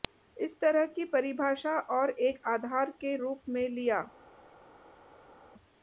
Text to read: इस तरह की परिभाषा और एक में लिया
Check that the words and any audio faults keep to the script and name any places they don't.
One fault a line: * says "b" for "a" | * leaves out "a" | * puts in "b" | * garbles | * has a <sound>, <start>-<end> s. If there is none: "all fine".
* puts in "आधार के रूप"